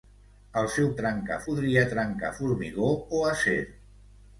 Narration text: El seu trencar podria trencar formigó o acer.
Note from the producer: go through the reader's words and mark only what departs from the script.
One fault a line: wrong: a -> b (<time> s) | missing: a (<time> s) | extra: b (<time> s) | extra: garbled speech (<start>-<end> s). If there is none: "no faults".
no faults